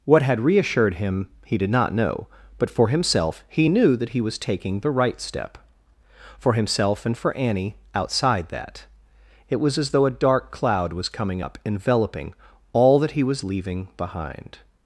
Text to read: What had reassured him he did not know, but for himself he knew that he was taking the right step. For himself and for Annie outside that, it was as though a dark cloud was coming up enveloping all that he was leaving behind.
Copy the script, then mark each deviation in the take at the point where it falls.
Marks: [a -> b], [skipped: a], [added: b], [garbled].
What had reassured him he did not know, but for himself he knew that he was taking the right step. For himself and for Annie outside that, it was as though a dark cloud was coming up enveloping all that he was leaving behind.